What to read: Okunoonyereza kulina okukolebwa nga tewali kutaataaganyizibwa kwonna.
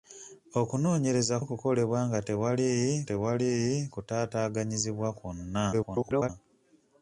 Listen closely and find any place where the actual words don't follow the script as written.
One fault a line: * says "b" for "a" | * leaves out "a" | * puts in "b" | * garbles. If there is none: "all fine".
* leaves out "kulina"
* puts in "tewali"
* garbles